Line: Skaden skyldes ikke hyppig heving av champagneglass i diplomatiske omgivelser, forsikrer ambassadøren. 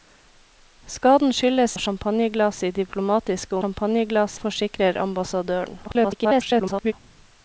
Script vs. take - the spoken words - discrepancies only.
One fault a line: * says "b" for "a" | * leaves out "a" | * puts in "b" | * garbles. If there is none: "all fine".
* leaves out "ikke hyppig heving"
* says "champagneglass" for "omgivelser"
* garbles